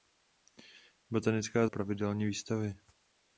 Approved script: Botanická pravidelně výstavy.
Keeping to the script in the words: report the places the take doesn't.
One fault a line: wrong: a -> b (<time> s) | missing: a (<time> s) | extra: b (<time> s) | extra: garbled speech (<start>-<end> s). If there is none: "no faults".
no faults